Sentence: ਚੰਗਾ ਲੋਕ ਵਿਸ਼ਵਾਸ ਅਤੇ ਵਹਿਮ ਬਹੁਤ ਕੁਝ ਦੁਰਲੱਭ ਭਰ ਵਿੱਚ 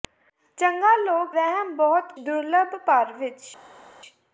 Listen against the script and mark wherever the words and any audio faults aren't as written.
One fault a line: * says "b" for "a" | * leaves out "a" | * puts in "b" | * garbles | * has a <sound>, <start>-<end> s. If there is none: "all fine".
* leaves out "ਵਿਸ਼ਵਾਸ ਅਤੇ"
* leaves out "ਕੁਝ"